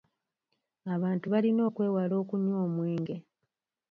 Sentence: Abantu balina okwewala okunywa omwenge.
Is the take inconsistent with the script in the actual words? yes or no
no